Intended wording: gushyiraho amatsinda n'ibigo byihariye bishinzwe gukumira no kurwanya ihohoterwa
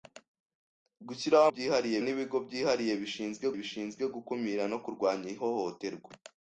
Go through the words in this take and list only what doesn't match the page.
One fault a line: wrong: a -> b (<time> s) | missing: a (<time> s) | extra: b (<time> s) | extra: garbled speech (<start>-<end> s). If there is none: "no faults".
wrong: amatsinda -> byihariye (1.5 s)
extra: bishinzwe (3.6 s)